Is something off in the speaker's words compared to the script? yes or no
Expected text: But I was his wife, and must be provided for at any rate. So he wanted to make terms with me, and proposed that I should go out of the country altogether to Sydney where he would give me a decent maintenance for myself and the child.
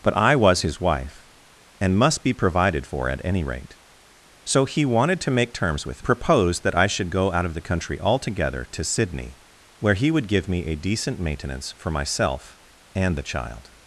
yes